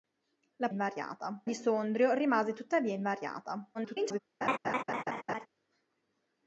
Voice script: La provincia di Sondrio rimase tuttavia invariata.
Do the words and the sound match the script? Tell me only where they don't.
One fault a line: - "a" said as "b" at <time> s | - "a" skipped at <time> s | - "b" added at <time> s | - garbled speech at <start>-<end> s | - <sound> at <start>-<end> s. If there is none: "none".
- "provincia" said as "invariata" at 0.7 s
- garbled speech at 3.7-4.2 s
- laugh at 4.4-5.5 s